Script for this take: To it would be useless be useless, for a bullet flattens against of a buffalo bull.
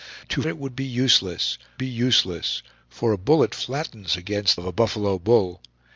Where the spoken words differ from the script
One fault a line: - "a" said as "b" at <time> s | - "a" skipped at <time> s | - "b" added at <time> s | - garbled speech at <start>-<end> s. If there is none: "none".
none